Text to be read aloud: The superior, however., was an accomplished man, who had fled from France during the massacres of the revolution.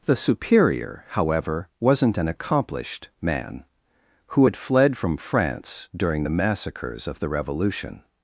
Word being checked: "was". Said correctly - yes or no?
no